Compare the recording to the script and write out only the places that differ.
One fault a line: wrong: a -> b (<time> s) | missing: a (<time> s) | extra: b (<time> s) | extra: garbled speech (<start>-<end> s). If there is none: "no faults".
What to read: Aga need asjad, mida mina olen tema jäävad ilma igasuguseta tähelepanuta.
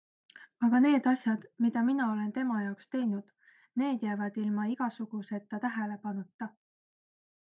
extra: jaoks teinud need (2.6 s)